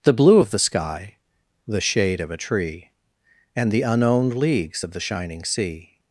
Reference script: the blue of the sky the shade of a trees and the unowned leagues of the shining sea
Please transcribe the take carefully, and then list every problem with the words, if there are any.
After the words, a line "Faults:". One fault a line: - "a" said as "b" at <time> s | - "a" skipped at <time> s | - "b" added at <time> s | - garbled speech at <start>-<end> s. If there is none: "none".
the blue of the sky the shade of a tree and the unowned leagues of the shining sea
Faults:
- "trees" said as "tree" at 2.4 s